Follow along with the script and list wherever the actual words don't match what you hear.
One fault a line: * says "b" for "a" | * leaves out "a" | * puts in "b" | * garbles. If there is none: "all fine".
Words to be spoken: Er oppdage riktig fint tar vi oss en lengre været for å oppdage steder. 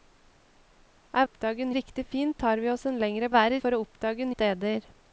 all fine